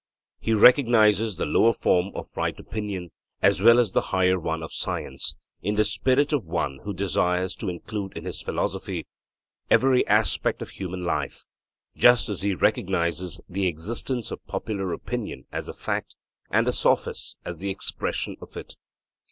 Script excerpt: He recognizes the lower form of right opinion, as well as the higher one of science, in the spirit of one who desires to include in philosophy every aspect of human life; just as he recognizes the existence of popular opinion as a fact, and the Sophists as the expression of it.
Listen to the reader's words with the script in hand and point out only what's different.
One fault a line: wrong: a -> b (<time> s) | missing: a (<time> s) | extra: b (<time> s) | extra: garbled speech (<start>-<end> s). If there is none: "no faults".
extra: his (8.2 s)